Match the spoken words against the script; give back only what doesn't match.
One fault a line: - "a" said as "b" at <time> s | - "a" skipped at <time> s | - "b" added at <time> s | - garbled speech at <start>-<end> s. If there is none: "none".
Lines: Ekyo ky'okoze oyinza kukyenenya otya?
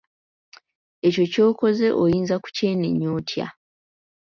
none